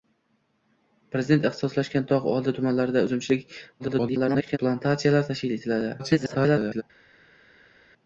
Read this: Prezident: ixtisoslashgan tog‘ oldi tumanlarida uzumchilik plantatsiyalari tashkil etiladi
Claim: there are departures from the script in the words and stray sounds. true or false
true